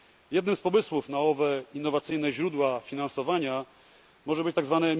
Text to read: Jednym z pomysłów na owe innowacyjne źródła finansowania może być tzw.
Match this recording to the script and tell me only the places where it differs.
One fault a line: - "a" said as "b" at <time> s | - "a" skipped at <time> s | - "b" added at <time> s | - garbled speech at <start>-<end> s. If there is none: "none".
none